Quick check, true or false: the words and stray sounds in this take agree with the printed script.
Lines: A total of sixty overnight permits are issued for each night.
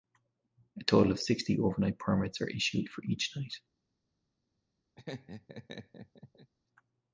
false